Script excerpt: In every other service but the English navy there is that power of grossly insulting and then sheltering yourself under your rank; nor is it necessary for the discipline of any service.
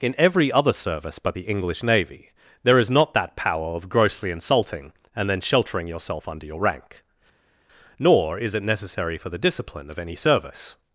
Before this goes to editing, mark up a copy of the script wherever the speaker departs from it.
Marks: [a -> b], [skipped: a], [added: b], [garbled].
In every other service but the English navy there is [added: not] that power of grossly insulting and then sheltering yourself under your rank; nor is it necessary for the discipline of any service.